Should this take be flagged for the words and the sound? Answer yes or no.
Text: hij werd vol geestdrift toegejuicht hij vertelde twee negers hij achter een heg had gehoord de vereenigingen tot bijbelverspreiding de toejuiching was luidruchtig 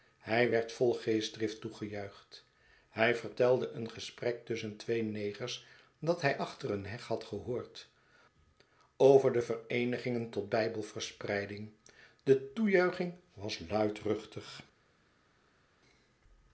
yes